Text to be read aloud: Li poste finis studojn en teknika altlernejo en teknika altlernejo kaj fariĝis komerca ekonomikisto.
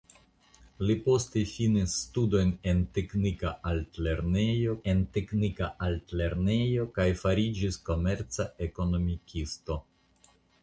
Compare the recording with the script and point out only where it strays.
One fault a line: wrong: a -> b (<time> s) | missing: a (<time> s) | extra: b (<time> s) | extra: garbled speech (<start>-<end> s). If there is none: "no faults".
no faults